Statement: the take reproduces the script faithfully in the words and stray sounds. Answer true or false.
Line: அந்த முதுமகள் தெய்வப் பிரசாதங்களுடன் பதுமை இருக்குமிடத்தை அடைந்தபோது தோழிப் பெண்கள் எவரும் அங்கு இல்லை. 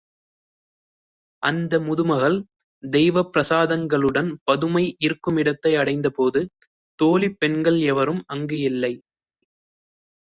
true